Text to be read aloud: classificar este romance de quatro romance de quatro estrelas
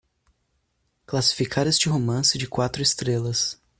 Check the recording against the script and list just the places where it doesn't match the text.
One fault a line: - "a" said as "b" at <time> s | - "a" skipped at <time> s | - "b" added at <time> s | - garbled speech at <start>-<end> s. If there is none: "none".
- "romance de quatro" skipped at 2.8 s